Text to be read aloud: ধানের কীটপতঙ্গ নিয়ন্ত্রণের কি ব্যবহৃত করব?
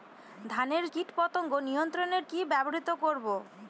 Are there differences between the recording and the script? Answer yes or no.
no